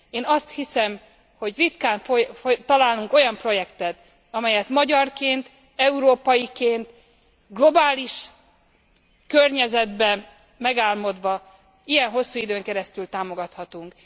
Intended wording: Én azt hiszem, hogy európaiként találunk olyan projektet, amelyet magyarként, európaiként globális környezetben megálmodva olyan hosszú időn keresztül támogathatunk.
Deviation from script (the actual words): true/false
true